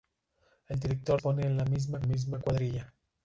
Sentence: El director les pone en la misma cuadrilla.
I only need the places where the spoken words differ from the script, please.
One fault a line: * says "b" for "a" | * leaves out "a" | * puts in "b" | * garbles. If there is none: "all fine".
* leaves out "les"
* puts in "misma"